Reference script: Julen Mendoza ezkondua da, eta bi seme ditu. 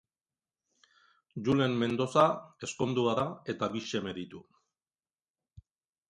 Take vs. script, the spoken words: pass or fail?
pass